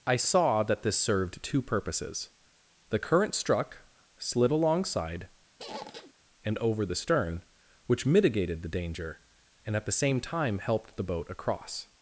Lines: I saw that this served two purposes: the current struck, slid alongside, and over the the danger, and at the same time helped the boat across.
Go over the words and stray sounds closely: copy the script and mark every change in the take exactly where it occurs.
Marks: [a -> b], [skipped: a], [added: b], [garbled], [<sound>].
I saw that this served two purposes: the current struck, slid alongside, [squeak] and over the [added: stern which mitigated] the danger, and at the same time helped the boat across.